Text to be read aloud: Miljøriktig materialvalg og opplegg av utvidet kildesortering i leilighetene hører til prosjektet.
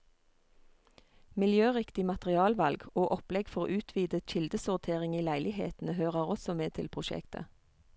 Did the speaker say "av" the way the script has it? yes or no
no